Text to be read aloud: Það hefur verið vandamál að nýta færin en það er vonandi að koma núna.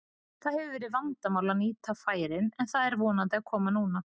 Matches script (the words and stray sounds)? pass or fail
pass